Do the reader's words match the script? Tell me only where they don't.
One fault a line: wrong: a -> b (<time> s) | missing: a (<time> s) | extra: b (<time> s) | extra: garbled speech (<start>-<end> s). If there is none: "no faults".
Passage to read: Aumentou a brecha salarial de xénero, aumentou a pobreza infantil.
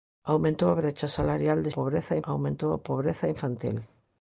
wrong: xénero -> pobreza (1.7 s)